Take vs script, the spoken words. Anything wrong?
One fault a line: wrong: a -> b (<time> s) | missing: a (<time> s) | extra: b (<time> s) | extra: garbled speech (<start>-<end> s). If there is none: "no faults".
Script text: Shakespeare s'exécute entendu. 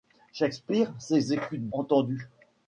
no faults